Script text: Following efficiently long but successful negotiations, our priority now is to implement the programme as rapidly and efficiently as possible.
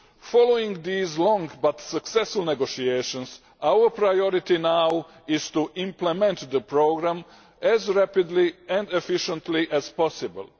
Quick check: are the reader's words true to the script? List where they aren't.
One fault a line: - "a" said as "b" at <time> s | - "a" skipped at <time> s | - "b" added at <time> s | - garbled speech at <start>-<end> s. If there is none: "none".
- "efficiently" said as "these" at 0.8 s